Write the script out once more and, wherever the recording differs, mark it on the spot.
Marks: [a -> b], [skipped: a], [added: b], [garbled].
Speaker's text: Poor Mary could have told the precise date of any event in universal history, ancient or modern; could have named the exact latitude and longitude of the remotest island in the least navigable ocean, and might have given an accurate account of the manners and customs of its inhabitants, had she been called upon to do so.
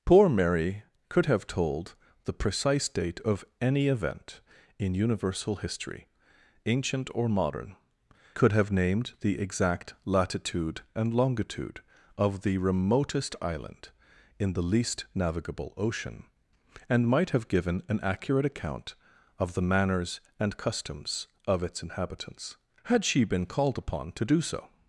Poor Mary could have told the precise date of any event in universal history, ancient or modern; could have named the exact latitude and longitude of the remotest island in the least navigable ocean, and might have given an accurate account of the manners and customs of its inhabitants, had she been called upon to do so.